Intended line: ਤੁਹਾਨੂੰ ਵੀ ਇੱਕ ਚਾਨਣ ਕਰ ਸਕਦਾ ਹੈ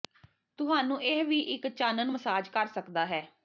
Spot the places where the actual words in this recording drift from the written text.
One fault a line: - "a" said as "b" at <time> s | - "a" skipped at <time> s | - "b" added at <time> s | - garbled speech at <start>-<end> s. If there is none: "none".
- "ਇਹ" added at 1.0 s
- "ਮਸਾਜ" added at 2.1 s